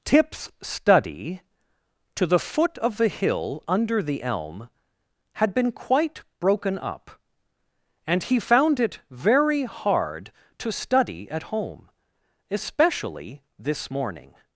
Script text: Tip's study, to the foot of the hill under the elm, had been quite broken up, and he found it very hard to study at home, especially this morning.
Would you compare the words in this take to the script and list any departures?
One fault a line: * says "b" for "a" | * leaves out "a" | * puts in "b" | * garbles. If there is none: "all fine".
all fine